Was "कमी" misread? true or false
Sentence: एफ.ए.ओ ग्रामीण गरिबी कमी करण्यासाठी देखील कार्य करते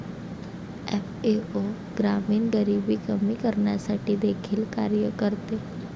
false